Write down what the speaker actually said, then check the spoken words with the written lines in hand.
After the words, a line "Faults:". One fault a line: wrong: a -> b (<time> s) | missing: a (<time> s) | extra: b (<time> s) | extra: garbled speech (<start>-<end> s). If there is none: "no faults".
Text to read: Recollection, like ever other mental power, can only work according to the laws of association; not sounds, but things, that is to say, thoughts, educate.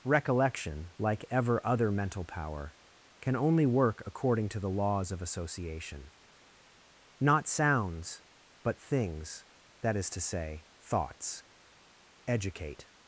Recollection, like ever other mental power, can only work according to the laws of association; not sounds, but things, that is to say, thoughts, educate.
Faults:
no faults